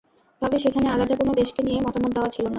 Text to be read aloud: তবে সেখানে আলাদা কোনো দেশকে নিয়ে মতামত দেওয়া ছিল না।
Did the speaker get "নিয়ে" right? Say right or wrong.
right